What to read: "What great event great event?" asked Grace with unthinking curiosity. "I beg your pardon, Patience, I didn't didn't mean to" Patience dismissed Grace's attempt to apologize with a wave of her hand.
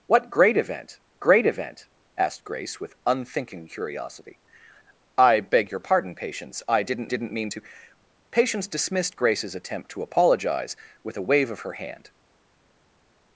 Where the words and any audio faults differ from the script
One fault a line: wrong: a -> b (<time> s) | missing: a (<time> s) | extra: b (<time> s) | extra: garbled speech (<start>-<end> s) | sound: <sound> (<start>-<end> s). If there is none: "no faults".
no faults